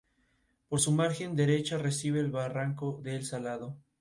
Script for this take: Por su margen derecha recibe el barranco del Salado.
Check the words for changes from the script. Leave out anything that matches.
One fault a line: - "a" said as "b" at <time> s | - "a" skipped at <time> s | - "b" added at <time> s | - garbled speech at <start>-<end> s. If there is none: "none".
none